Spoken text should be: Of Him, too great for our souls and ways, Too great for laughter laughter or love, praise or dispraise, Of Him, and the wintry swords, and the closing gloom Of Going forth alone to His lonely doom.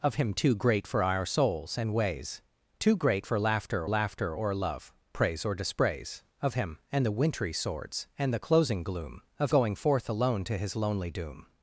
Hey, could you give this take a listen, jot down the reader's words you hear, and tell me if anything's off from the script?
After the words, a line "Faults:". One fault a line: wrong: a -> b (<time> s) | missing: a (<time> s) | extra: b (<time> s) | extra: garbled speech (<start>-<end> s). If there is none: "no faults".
Of Him, too great for our souls and ways, Too great for laughter laughter or love, praise or dispraise, Of Him, and the wintry swords, and the closing gloom Of Going forth alone to His lonely doom.
Faults:
no faults